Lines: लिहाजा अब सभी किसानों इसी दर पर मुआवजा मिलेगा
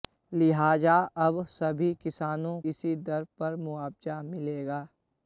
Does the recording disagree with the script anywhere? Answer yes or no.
no